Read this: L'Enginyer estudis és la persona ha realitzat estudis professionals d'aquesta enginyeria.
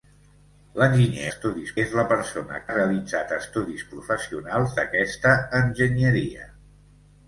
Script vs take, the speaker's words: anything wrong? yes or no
no